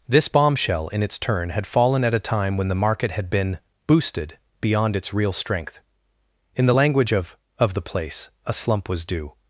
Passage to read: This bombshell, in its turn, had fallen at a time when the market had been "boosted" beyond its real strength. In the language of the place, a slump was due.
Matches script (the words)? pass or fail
fail